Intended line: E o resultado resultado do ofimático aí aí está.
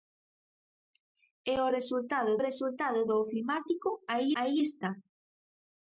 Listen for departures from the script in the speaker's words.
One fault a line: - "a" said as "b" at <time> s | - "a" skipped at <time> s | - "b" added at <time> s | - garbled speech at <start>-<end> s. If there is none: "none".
none